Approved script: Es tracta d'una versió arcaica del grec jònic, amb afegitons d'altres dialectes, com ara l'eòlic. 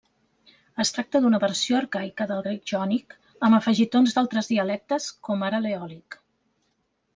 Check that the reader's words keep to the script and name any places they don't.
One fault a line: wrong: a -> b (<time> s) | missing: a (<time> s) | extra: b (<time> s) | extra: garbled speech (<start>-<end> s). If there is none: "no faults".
no faults